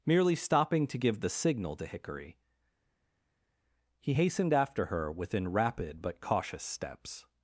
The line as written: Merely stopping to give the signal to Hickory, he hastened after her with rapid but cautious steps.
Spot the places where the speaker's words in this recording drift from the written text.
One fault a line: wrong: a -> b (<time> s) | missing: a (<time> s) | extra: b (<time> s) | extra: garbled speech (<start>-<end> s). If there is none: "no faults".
wrong: with -> within (5.1 s)